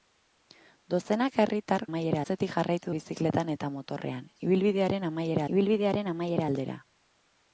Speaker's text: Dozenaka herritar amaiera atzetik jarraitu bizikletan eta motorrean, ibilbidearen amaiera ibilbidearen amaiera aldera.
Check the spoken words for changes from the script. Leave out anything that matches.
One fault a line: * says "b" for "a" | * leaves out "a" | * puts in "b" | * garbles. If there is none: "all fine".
all fine